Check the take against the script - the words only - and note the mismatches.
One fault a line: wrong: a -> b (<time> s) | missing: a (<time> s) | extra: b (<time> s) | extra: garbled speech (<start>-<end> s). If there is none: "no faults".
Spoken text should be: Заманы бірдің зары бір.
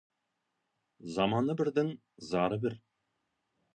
no faults